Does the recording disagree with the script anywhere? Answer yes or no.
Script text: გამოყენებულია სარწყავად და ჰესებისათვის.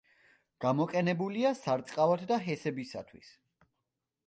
no